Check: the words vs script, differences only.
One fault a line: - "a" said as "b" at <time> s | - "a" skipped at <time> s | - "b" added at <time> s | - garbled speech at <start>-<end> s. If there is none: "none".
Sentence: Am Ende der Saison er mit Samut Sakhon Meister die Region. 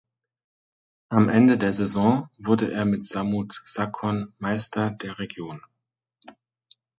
- "wurde" added at 2.4 s
- "die" said as "der" at 4.9 s